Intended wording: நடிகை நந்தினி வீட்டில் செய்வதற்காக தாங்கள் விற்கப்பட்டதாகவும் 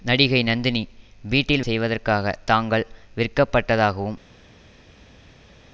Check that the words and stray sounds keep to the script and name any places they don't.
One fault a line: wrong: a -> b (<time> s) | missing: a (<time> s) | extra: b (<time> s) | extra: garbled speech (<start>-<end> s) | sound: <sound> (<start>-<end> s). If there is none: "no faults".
no faults